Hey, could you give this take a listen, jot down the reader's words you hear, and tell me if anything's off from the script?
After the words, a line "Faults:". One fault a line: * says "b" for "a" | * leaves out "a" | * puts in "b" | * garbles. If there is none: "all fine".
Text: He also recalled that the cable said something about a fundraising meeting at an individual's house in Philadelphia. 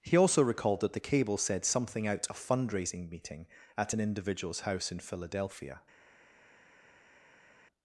He also recalled that the cable said something out a fundraising meeting at an individual's house in Philadelphia.
Faults:
* says "out" for "about"